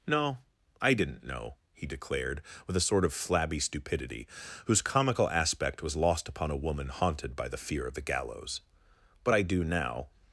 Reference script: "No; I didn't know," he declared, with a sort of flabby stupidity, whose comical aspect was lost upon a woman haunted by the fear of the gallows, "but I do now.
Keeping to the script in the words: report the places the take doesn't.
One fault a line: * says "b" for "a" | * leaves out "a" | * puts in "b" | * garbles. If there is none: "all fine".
all fine